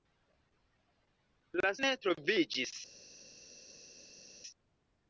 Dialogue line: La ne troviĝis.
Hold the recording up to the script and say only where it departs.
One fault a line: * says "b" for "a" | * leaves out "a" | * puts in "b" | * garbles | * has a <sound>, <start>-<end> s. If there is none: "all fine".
all fine